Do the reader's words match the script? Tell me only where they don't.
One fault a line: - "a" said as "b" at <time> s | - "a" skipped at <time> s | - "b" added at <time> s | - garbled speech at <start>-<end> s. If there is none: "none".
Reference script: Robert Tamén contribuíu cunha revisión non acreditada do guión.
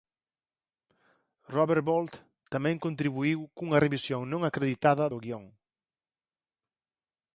- "Bolt" added at 1.9 s